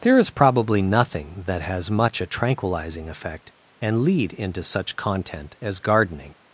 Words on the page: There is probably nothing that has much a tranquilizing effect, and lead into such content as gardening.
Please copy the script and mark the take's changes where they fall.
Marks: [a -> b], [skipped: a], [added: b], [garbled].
There is probably nothing that has much a tranquilizing effect, and lead into such content as gardening.